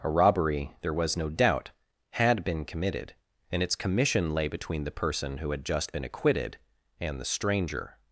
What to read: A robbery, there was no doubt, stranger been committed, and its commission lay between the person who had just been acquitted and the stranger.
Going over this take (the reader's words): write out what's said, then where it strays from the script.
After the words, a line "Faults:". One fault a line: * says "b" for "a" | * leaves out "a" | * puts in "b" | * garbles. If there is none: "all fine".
A robbery, there was no doubt, had been committed, and its commission lay between the person who had just been acquitted and the stranger.
Faults:
* says "had" for "stranger"